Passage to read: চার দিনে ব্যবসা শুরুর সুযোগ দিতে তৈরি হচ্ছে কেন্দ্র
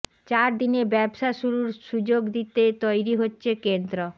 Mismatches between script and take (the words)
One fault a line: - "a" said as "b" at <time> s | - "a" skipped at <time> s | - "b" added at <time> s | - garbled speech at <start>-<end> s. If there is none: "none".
none